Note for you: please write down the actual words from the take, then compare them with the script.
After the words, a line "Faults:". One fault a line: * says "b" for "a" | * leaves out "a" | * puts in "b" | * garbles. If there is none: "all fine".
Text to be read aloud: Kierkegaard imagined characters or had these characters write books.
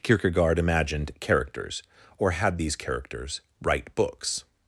Kierkegaard imagined characters or had these characters write books.
Faults:
all fine